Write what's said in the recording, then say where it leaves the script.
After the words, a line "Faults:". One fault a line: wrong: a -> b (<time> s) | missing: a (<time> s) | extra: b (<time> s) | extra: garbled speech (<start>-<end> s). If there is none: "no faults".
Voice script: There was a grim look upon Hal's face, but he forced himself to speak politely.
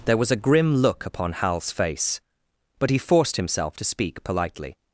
There was a grim look upon Hal's face, but he forced himself to speak politely.
Faults:
no faults